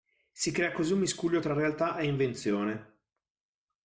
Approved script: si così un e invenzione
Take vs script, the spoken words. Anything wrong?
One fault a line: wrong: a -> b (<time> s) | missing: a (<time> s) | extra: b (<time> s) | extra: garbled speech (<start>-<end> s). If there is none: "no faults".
extra: crea (0.5 s)
extra: miscuglio tra realtà (1.0 s)